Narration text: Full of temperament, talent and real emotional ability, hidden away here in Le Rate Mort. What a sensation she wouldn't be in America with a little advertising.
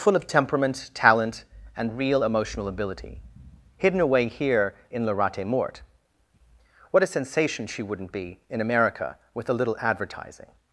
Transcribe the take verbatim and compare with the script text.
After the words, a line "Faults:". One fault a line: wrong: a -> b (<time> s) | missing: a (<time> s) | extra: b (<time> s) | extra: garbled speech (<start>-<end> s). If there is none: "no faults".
Full of temperament, talent and real emotional ability, hidden away here in Le Rate Mort. What a sensation she wouldn't be in America with a little advertising.
Faults:
no faults